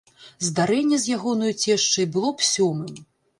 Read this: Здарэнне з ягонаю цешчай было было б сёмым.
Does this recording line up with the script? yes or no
no